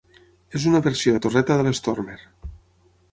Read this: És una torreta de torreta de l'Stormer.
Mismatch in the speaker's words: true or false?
true